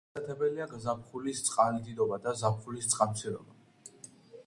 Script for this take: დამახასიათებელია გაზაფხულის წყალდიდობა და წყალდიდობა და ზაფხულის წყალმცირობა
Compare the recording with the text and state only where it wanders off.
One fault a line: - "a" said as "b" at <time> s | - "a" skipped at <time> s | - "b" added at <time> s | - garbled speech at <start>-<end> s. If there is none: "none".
- "წყალდიდობა და" skipped at 2.4 s